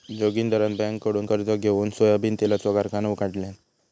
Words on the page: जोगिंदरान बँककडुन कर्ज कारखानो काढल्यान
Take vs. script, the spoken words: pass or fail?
fail